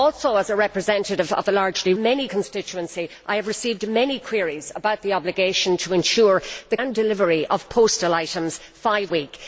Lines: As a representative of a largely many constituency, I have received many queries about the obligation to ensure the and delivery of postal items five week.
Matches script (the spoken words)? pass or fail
pass